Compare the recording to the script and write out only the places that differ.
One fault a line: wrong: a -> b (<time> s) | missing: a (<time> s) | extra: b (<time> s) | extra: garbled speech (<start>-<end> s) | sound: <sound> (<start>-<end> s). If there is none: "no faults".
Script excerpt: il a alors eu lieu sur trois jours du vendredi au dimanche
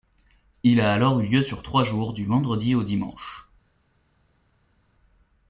no faults